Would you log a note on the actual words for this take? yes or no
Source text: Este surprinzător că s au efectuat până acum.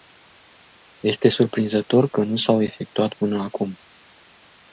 yes